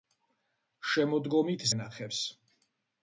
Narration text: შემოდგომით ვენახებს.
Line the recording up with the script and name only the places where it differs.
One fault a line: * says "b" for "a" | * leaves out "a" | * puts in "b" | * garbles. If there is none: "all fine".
all fine